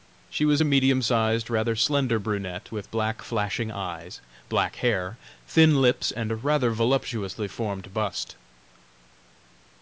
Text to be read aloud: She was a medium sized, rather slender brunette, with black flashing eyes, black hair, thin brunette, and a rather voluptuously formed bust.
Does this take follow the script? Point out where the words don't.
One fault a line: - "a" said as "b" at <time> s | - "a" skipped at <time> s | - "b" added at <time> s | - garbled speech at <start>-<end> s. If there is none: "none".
- "brunette" said as "lips" at 5.8 s